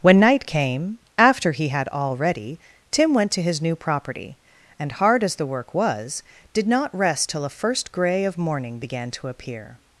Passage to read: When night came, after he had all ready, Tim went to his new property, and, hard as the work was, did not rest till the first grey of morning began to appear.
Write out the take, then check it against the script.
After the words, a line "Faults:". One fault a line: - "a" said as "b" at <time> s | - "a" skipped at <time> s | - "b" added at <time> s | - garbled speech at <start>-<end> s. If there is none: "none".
When night came, after he had all ready, Tim went to his new property, and, hard as the work was, did not rest till a first grey of morning began to appear.
Faults:
- "the" said as "a" at 7.5 s